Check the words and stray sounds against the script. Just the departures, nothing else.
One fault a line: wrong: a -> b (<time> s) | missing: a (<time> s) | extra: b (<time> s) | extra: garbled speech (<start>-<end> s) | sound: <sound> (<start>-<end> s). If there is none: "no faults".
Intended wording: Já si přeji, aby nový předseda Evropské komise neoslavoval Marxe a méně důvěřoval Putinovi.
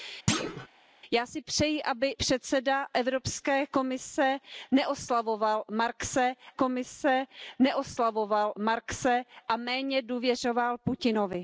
sound: thud (0.3-0.7 s)
missing: nový (2.2 s)
extra: komise neoslavoval Marxe (6.5 s)